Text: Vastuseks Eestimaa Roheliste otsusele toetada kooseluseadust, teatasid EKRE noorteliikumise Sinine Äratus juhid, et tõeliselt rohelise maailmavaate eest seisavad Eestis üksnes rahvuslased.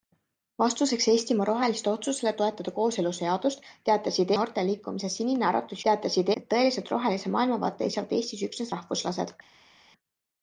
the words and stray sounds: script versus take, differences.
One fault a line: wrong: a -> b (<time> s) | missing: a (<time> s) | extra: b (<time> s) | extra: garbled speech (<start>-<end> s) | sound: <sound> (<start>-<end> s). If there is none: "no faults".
missing: EKRE (4.3 s)
wrong: juhid -> teatasid (5.9 s)
missing: eest (7.9 s)